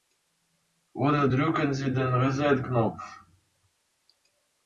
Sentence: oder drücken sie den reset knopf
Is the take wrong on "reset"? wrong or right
right